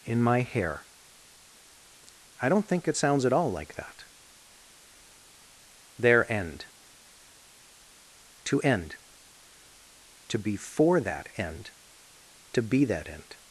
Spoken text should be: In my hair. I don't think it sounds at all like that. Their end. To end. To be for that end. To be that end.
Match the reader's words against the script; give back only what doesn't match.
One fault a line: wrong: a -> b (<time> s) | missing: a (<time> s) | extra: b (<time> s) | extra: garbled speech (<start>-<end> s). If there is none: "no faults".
no faults